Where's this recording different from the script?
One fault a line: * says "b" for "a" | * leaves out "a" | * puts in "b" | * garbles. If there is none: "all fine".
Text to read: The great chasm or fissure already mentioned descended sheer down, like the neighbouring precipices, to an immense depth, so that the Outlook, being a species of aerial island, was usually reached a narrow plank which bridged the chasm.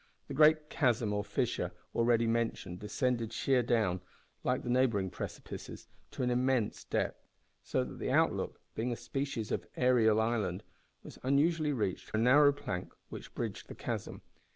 all fine